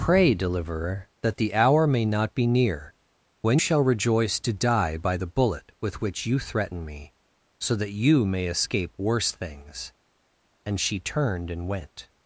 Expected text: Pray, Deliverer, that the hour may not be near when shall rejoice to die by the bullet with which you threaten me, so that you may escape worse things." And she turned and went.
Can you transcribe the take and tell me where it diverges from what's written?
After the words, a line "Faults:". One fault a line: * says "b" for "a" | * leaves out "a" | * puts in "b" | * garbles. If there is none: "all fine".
Pray, Deliverer, that the hour may not be near when shall rejoice to die by the bullet with which you threaten me, so that you may escape worse things." And she turned and went.
Faults:
all fine